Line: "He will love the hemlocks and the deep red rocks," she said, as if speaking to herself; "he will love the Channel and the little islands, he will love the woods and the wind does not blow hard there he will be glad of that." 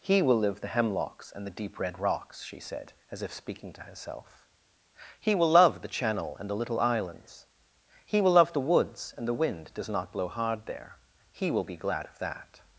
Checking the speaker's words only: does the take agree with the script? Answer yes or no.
no